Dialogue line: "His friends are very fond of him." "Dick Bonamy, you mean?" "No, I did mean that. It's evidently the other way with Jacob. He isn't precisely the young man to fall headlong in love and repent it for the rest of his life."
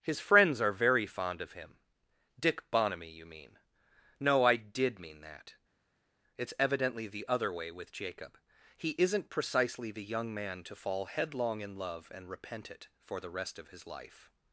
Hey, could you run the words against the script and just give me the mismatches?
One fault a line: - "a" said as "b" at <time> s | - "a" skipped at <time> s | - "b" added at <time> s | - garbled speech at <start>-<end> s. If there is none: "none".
none